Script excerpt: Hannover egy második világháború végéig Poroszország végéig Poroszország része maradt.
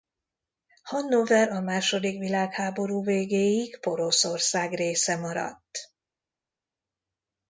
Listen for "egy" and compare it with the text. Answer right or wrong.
wrong